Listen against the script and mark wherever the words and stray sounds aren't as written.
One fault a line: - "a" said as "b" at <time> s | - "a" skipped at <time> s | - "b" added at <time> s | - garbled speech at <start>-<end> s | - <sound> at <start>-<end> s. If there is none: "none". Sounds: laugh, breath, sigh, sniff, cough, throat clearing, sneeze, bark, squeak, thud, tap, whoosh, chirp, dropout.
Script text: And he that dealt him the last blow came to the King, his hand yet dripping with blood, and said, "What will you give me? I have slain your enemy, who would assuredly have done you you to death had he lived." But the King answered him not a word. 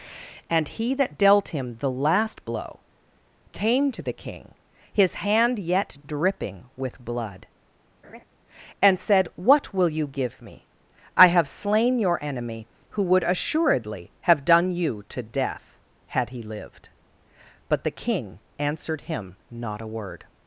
- laugh at 8.0-8.2 s
- "you" skipped at 15.0 s